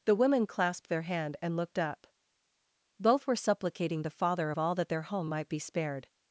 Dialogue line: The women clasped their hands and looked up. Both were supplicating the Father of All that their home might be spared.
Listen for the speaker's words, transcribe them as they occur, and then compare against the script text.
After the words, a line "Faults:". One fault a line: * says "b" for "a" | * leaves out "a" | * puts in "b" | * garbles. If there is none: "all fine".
The women clasped their hand and looked up. Both were supplicating the Father of All that their home might be spared.
Faults:
* says "hand" for "hands"